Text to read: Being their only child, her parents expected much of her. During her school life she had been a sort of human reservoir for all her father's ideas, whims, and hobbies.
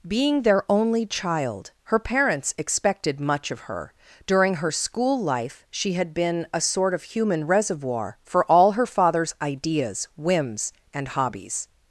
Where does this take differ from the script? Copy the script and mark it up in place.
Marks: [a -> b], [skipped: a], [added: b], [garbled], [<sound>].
Being their only child, her parents expected much of her. During her school life she had been a sort of human reservoir for all her father's ideas, whims, and hobbies.